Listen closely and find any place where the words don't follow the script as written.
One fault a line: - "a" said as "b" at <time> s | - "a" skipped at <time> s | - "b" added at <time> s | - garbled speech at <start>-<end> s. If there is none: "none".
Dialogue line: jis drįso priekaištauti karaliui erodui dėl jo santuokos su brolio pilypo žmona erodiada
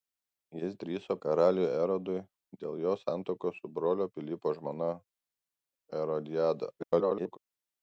- "priekaištauti" skipped at 1.1 s
- garbled speech at 6.8-7.4 s